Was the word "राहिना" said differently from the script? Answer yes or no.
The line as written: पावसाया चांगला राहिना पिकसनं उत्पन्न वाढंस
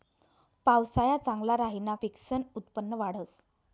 no